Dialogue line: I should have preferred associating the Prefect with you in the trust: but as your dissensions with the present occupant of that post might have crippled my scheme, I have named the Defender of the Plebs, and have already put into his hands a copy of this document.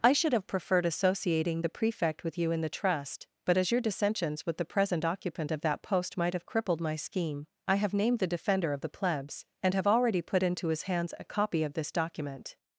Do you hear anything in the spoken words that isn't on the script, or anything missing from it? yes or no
no